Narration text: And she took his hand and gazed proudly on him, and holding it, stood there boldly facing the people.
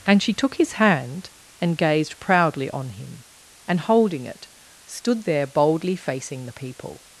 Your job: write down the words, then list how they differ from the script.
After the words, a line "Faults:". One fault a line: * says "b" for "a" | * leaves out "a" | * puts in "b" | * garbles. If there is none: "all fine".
And she took his hand and gazed proudly on him, and holding it, stood there boldly facing the people.
Faults:
all fine